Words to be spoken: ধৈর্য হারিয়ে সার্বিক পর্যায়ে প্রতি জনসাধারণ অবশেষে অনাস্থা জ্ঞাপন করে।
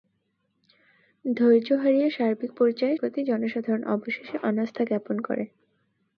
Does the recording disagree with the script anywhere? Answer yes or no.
no